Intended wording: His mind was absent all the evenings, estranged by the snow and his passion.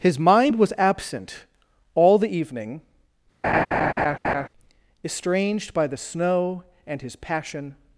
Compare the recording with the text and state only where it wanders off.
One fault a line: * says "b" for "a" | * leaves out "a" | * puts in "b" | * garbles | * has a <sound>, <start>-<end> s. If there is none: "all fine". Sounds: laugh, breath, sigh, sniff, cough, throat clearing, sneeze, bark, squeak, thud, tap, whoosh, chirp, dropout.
* says "evening" for "evenings"
* has a laugh, 3.4-4.5 s